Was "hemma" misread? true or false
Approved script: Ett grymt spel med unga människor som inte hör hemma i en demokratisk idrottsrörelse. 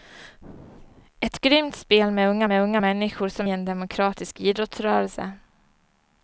true